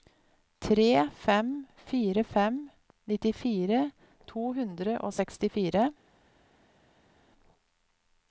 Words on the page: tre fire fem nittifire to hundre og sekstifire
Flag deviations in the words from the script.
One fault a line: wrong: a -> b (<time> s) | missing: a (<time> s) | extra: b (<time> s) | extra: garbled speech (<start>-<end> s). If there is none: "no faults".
extra: fem (1.2 s)